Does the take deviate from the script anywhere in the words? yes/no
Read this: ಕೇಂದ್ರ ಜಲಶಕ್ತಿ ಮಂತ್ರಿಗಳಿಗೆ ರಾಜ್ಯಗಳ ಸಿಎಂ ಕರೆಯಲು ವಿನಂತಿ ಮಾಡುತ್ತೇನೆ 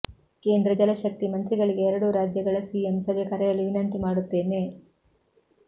yes